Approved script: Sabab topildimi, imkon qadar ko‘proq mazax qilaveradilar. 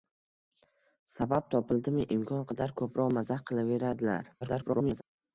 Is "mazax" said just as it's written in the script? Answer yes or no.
yes